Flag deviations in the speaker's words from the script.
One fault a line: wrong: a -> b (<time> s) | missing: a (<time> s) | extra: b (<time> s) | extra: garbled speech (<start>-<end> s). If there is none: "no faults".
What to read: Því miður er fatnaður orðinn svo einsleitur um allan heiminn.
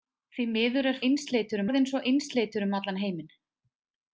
wrong: fatnaður -> einsleitur (1.1 s)